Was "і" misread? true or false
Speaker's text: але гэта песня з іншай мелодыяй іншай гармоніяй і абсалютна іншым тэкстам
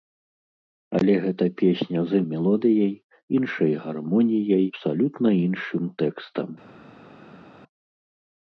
true